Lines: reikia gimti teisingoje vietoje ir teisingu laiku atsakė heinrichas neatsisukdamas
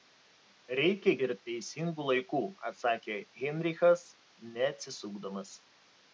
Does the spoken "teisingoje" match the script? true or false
false